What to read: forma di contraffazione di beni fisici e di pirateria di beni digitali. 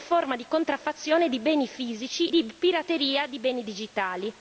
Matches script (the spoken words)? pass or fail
fail